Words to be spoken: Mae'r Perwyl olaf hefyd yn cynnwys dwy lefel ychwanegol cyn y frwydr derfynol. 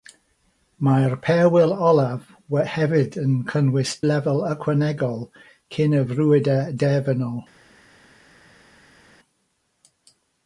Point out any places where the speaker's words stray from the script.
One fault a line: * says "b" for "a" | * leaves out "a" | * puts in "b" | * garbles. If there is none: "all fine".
* leaves out "dwy"